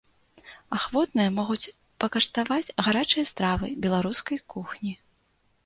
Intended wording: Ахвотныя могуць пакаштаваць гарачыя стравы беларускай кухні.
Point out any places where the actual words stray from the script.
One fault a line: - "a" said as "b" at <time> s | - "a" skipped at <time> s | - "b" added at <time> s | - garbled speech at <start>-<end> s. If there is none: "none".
none